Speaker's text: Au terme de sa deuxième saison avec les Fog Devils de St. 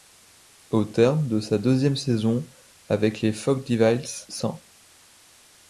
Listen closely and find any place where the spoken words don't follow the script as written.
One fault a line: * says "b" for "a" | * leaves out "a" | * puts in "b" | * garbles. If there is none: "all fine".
* leaves out "de"